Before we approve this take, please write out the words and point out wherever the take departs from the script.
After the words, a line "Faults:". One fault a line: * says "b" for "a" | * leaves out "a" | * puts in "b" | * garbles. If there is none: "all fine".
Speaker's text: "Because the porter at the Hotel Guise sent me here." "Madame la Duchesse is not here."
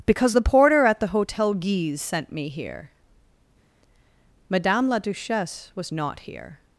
"Because the porter at the Hotel Guise sent me here." "Madame la Duchesse was not here."
Faults:
* says "was" for "is"